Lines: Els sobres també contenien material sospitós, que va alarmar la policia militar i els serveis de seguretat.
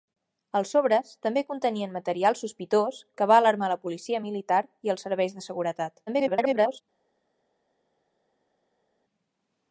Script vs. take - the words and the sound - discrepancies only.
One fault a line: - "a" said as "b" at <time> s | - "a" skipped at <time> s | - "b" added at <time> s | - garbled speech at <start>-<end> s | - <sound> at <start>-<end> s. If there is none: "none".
- garbled speech at 6.1-6.8 s